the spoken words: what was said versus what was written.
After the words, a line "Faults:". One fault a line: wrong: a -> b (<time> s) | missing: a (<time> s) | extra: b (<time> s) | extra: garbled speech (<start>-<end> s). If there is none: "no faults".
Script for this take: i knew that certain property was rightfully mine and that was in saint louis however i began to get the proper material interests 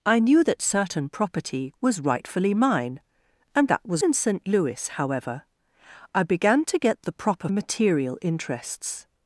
i knew that certain property was rightfully mine and that was in saint louis however i began to get the proper material interests
Faults:
no faults